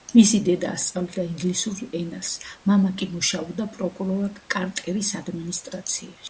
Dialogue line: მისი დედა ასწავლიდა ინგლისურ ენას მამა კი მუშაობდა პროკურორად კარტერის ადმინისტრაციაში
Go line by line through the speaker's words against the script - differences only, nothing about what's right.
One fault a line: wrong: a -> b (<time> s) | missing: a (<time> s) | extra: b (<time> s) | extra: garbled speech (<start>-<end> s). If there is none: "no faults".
no faults